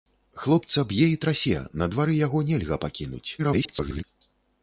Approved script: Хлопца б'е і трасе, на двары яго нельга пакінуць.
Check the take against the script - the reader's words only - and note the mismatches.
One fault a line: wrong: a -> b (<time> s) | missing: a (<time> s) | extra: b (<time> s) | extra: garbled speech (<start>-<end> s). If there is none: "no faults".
extra: garbled speech (3.4-4.0 s)